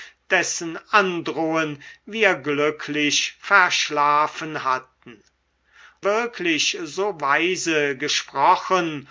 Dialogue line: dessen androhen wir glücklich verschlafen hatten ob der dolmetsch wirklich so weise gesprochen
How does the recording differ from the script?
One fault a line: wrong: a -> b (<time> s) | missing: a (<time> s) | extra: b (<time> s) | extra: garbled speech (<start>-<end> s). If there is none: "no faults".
missing: ob der dolmetsch (5.2 s)